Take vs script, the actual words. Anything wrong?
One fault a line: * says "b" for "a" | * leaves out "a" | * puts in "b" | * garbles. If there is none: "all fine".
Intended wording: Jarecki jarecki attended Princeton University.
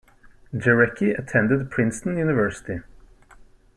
* leaves out "jarecki"